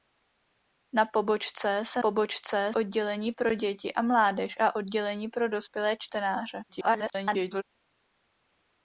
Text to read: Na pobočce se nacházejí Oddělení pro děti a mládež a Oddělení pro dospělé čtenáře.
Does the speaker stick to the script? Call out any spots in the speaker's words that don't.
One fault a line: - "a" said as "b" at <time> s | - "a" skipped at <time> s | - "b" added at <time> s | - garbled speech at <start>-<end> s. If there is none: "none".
- "nacházejí" said as "pobočce" at 2.0 s
- garbled speech at 6.7-7.6 s